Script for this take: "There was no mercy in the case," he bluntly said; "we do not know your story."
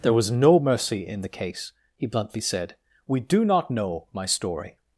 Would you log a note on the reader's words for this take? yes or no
yes